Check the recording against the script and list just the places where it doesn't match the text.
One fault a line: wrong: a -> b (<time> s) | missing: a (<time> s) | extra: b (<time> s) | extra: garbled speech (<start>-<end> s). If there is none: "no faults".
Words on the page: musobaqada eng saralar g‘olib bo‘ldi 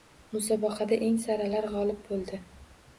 no faults